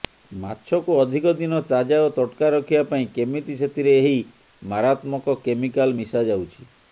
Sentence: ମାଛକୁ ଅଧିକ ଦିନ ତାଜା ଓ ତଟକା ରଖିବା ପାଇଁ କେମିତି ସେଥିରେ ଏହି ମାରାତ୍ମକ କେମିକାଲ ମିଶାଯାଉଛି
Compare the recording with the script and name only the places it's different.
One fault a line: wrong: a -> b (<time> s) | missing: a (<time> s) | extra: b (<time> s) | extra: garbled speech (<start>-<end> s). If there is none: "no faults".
no faults